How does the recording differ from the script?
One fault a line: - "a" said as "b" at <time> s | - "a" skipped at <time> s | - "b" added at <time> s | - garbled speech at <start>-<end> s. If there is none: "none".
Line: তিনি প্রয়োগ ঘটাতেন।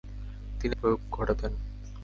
none